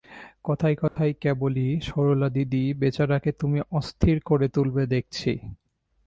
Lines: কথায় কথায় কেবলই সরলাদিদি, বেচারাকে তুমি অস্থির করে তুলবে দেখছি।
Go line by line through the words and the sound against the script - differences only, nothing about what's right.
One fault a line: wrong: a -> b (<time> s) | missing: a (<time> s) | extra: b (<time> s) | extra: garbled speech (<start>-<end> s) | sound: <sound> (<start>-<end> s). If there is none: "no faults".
sound: dropout (0.9-1.0 s)